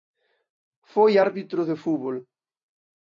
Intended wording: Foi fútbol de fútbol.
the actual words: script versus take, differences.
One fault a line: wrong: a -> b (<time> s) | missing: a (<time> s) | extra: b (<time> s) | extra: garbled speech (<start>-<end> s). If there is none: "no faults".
wrong: fútbol -> árbitro (1.2 s)